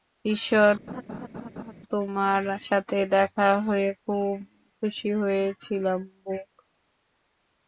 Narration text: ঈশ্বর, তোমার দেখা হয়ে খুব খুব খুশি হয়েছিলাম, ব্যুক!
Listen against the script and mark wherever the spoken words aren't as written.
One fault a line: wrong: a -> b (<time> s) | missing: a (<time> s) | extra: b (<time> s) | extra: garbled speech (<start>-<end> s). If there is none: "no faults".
extra: সাথে (2.6 s)
missing: খুব (4.3 s)